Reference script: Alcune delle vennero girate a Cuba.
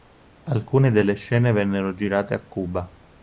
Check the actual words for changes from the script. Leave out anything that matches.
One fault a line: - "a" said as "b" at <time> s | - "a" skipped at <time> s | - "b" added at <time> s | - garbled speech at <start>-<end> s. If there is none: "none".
- "scene" added at 1.1 s